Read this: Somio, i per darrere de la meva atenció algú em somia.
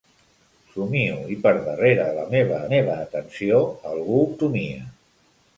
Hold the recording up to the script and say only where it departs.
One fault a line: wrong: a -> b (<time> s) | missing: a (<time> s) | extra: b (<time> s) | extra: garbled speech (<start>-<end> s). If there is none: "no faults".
extra: meva (2.7 s)
missing: em (4.2 s)